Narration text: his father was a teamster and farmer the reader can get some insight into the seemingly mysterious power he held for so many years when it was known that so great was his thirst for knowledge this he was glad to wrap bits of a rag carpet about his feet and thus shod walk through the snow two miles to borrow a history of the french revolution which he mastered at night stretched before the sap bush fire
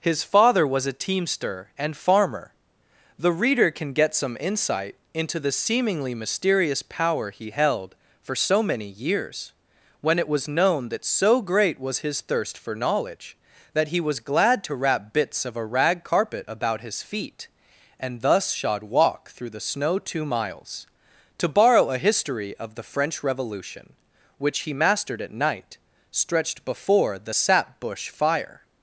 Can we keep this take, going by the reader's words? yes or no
no